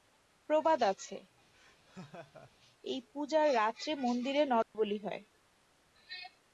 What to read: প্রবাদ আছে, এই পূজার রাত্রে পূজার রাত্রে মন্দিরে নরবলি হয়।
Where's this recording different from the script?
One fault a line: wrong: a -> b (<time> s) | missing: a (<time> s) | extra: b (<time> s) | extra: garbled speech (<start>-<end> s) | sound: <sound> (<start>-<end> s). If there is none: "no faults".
sound: laugh (1.5-2.5 s)
missing: পূজার রাত্রে (3.9 s)
sound: dropout (4.6-4.7 s)